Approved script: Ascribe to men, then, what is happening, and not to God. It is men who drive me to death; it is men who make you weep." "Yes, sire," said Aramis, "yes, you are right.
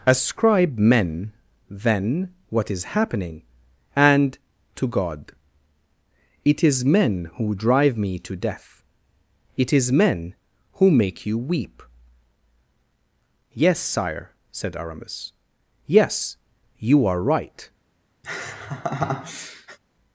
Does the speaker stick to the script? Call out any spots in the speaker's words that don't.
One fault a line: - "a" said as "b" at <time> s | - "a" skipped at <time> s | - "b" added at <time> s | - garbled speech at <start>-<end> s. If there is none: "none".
- "to" skipped at 0.8 s
- "not" skipped at 4.4 s